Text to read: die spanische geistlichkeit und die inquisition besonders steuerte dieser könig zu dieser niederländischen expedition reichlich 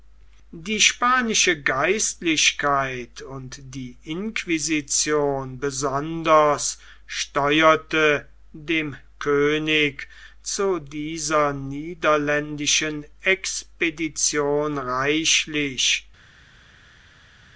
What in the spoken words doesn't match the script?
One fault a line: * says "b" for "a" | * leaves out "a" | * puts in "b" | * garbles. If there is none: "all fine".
* says "dem" for "dieser"